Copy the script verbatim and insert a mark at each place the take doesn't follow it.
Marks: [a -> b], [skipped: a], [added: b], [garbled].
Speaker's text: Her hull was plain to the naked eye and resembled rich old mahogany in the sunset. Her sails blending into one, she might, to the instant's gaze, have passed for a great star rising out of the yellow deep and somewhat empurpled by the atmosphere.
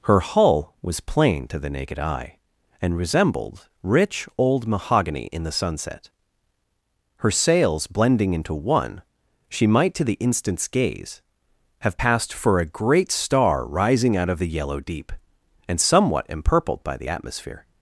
Her hull was plain to the naked eye and resembled rich old mahogany in the sunset. Her sails blending into one, she might, to the instant's gaze, have passed for a great star rising out of the yellow deep and somewhat empurpled by the atmosphere.